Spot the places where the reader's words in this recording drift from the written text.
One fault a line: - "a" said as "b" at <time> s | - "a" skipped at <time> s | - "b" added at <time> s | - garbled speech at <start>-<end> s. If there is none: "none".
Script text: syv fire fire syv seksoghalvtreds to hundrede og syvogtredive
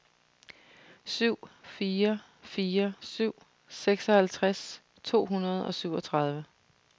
none